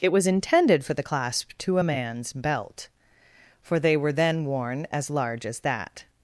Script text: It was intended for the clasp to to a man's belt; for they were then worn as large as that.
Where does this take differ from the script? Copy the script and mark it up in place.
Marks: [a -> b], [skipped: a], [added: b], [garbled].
It was intended for the clasp to [skipped: to] a man's belt; for they were then worn as large as that.